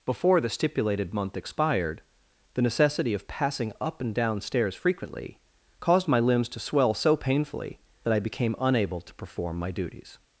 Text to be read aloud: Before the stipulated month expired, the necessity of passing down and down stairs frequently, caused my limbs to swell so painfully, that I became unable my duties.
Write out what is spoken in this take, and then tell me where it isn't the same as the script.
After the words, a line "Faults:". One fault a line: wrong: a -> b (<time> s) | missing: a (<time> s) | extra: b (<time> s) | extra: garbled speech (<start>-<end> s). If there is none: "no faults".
Before the stipulated month expired, the necessity of passing up and down stairs frequently, caused my limbs to swell so painfully, that I became unable to perform my duties.
Faults:
wrong: down -> up (3.8 s)
extra: to perform (9.0 s)